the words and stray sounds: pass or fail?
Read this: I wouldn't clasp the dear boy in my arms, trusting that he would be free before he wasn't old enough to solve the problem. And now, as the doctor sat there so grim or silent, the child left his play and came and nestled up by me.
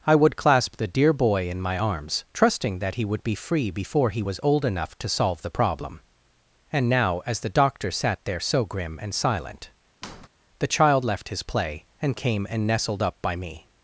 fail